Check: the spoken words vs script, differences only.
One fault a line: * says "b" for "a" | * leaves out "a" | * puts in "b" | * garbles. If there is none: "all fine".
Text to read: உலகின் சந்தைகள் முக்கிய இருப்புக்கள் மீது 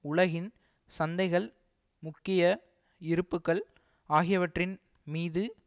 * puts in "ஆகியவற்றின்"